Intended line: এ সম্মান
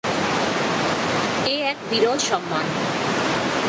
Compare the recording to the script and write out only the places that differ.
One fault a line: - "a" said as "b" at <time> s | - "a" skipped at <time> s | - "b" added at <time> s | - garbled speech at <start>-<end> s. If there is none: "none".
- "এক বিরল" added at 1.6 s